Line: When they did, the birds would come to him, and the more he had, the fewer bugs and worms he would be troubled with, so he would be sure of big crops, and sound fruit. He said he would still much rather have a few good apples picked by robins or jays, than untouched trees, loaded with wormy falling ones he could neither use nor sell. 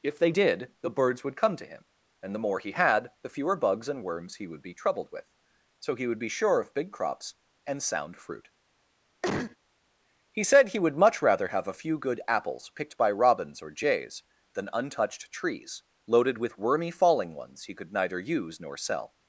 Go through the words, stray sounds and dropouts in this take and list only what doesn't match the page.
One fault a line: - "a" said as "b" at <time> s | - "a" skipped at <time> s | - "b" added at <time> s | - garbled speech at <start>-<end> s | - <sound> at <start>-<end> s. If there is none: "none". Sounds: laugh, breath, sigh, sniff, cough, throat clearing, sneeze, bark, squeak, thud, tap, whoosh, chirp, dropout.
- "When" said as "If" at 0.0 s
- cough at 9.2-9.6 s
- "still" skipped at 11.0 s